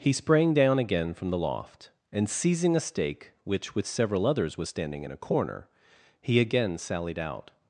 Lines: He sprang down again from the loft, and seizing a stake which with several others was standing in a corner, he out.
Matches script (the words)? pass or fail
fail